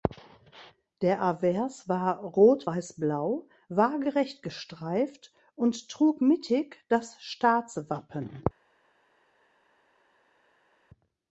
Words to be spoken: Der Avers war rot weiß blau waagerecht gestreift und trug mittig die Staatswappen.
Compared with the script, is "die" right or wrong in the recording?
wrong